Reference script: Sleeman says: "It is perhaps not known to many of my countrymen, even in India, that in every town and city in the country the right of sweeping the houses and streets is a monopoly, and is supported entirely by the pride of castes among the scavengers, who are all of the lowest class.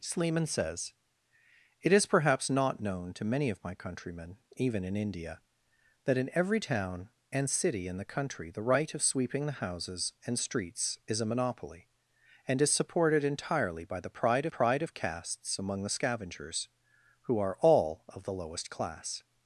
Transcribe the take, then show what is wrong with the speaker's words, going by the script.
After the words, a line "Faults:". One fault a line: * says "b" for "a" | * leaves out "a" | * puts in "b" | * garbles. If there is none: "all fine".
Sleeman says: "It is perhaps not known to many of my countrymen, even in India, that in every town and city in the country the right of sweeping the houses and streets is a monopoly, and is supported entirely by the pride pride of castes among the scavengers, who are all of the lowest class.
Faults:
* puts in "pride"